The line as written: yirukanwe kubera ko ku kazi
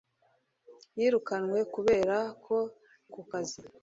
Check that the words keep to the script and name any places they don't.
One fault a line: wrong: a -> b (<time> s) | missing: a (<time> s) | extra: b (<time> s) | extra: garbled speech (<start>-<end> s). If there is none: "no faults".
no faults